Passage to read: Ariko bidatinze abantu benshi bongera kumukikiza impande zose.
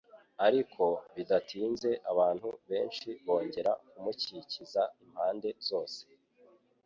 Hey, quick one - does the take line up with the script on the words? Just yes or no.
yes